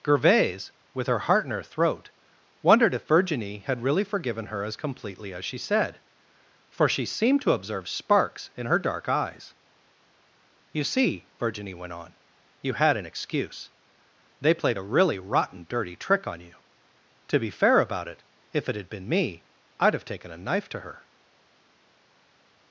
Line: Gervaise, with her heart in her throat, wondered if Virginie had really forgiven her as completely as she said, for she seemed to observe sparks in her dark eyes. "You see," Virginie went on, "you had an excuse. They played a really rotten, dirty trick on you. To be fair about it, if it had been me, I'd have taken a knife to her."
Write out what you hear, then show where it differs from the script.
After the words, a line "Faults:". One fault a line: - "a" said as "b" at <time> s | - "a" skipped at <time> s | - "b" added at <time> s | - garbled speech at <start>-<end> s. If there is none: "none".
Gervaise, with her heart in her throat, wondered if Virginie had really forgiven her as completely as she said, for she seemed to observe sparks in her dark eyes. "You see," Virginie went on, "you had an excuse. They played a really rotten, dirty trick on you. To be fair about it, if it had been me, I'd have taken a knife to her."
Faults:
none